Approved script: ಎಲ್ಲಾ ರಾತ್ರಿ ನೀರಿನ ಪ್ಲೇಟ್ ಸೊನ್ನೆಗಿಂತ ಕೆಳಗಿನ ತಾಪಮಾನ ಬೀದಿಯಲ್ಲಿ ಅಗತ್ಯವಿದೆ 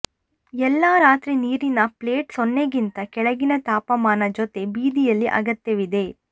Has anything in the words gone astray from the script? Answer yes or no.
yes